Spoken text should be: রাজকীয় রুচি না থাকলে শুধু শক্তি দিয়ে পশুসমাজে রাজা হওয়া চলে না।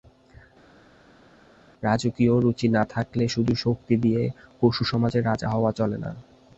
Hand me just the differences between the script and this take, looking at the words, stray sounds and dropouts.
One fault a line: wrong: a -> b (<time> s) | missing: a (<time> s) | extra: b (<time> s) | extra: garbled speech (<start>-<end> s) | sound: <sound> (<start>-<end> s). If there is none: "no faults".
no faults